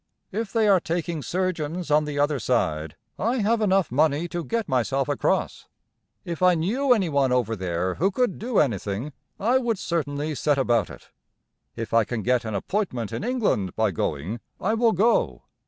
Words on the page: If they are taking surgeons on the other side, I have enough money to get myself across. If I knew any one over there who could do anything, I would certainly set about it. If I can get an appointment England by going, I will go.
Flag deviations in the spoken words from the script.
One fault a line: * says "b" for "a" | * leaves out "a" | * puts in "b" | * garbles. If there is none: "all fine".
* puts in "in"